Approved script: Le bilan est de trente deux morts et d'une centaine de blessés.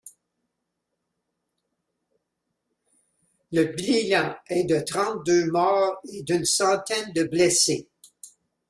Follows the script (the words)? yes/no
yes